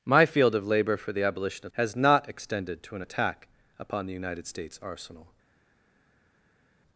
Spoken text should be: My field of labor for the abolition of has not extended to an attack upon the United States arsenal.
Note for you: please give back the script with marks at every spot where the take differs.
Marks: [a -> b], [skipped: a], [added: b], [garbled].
My field of labor for the abolition of has not extended to an attack upon the United States arsenal.